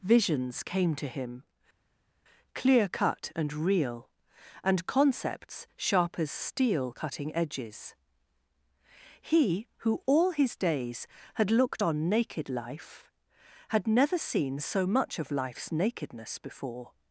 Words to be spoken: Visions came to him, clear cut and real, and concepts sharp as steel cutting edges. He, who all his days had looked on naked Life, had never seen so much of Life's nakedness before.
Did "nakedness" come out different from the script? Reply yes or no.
no